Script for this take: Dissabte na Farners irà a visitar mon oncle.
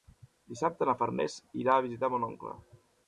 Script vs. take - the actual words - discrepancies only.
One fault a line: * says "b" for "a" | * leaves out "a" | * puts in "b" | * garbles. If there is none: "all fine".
all fine